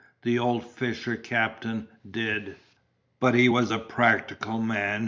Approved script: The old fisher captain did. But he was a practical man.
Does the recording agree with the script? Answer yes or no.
yes